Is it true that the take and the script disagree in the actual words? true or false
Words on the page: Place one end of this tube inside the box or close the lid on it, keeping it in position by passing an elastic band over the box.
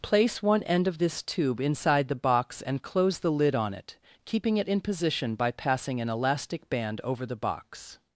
true